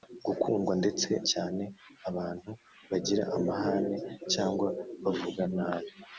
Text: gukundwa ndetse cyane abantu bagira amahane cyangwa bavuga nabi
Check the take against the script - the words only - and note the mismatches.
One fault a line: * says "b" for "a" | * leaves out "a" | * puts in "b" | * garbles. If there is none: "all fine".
all fine